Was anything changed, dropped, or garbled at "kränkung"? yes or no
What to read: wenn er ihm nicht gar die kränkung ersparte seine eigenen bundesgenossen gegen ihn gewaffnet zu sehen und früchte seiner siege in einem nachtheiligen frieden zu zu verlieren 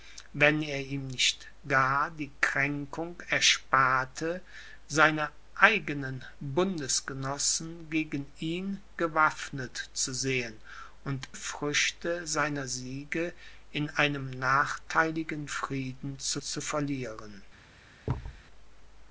no